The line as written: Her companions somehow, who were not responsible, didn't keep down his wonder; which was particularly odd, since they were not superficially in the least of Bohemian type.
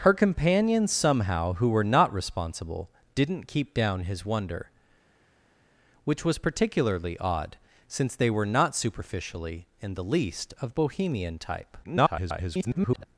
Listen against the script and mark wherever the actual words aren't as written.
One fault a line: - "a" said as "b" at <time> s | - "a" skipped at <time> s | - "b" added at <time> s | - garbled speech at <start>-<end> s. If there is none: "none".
- garbled speech at 11.8-13.1 s